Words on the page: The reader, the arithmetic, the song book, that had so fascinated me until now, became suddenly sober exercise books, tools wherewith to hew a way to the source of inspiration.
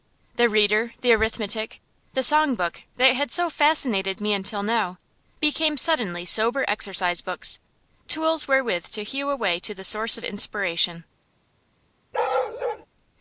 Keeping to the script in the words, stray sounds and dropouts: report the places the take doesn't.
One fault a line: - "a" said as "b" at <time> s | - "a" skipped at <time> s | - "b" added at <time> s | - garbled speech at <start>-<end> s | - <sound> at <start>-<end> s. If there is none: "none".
- bark at 12.1-12.9 s